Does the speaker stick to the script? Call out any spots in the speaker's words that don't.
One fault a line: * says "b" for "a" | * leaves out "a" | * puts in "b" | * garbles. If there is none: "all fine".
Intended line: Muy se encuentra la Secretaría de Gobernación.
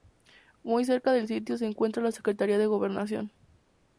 * puts in "cerca del sitio"